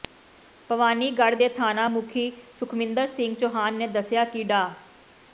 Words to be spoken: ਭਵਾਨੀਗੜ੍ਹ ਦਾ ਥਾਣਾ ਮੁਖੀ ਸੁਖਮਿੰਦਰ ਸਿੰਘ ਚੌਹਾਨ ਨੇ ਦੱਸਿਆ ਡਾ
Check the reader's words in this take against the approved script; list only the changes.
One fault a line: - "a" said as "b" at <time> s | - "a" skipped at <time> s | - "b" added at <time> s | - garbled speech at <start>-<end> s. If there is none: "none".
- "ਦਾ" said as "ਦੇ" at 1.4 s
- "ਕਿ" added at 4.3 s